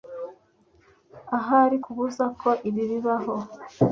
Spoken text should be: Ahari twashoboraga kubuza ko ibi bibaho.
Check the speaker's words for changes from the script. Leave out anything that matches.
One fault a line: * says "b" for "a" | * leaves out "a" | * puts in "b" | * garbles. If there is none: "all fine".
* leaves out "twashoboraga"